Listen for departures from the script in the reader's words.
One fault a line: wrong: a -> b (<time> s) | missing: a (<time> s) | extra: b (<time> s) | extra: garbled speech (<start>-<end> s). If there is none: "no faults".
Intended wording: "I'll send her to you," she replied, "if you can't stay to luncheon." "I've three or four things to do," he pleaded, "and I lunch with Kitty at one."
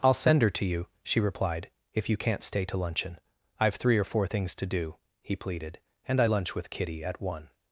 no faults